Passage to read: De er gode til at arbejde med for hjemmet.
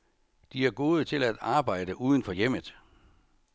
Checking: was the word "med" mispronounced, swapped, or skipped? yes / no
yes